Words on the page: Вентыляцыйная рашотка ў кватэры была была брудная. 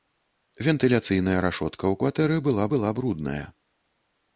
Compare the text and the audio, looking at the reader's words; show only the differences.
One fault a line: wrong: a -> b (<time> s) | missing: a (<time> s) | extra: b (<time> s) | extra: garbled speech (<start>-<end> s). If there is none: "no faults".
no faults